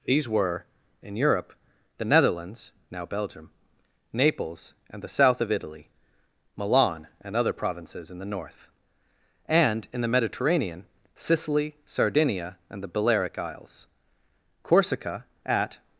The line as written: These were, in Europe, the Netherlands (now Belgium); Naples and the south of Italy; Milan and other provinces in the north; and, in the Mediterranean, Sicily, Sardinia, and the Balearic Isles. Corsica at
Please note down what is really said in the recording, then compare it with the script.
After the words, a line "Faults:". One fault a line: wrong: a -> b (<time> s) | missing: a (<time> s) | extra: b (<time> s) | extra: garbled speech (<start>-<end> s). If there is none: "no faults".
These were, in Europe, the Netherlands (now Belgium); Naples and the south of Italy; Milan and other provinces in the north; and, in the Mediterranean, Sicily, Sardinia, and the Balearic Isles. Corsica at
Faults:
no faults